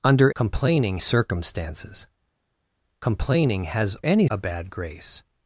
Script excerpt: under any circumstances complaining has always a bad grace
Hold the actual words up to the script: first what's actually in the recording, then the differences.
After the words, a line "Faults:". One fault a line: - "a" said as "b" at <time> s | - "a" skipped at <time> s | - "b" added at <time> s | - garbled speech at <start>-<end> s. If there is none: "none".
under complaining circumstances complaining has any a bad grace
Faults:
- "any" said as "complaining" at 0.4 s
- "always" said as "any" at 4.0 s